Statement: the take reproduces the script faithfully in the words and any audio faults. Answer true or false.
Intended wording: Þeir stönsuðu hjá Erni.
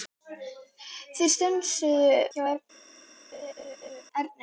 false